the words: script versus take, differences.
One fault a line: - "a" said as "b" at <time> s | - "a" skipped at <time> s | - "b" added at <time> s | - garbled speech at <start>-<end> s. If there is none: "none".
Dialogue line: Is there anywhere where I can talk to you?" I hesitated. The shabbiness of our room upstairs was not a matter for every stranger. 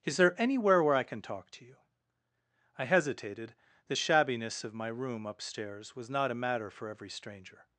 - "our" said as "my" at 4.7 s